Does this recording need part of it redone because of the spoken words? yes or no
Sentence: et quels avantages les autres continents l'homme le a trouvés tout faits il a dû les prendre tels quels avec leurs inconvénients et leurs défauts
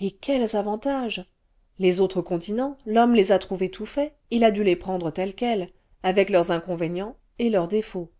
yes